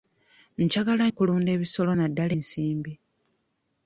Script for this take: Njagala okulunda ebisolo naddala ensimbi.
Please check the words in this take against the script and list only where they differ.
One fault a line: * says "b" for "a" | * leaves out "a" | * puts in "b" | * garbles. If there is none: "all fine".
all fine